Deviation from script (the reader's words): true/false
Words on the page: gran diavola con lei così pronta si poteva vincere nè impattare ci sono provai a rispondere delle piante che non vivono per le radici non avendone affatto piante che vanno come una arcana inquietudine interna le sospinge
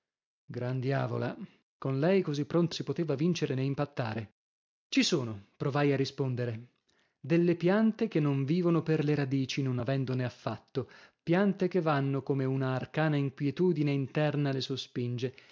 false